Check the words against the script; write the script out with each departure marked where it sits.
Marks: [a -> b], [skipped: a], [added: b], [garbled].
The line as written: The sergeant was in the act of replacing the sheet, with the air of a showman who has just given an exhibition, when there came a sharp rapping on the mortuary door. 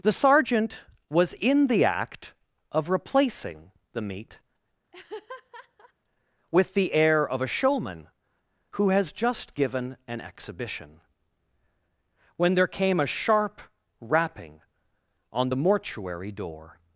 The sergeant was in the act of replacing the [sheet, -> meat] with the air of a showman who has just given an exhibition, when there came a sharp rapping on the mortuary door.